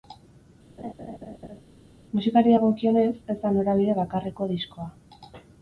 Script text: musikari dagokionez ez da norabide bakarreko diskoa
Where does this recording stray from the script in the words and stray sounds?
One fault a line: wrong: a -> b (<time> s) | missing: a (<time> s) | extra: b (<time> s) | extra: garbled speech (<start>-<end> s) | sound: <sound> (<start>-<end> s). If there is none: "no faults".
sound: laugh (0.8-1.6 s)